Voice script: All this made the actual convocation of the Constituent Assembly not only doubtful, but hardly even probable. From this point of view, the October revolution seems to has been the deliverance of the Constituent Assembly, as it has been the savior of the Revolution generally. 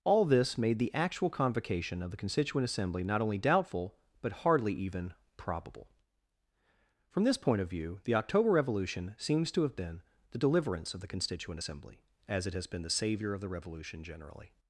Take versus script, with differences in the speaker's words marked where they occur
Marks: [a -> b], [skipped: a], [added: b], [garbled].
All this made the actual convocation of the Constituent Assembly not only doubtful, but hardly even probable. From this point of view, the October revolution seems to [has -> have] been the deliverance of the Constituent Assembly, as it has been the savior of the Revolution generally.